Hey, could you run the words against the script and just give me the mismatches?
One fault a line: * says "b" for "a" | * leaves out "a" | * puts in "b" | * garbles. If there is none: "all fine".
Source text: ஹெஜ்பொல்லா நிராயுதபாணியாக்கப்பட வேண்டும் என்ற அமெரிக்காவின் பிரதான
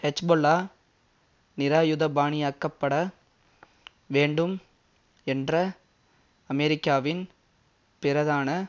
all fine